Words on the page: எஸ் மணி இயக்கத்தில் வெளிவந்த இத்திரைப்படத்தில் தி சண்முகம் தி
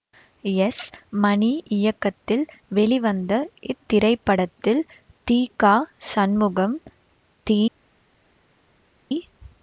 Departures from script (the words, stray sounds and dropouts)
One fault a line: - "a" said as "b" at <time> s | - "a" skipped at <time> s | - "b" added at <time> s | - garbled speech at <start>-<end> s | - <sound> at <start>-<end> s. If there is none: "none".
- "க" added at 5.6 s